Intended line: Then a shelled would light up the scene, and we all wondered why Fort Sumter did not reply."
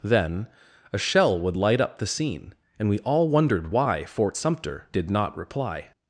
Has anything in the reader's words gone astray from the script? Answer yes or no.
yes